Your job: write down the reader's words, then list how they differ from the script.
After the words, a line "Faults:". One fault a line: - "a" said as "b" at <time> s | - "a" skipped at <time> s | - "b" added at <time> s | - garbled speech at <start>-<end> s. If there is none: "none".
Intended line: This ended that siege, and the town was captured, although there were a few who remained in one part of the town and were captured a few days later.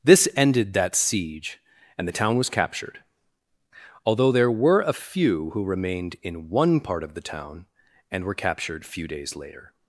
This ended that siege, and the town was captured, although there were a few who remained in one part of the town and were captured few days later.
Faults:
- "a" skipped at 8.9 s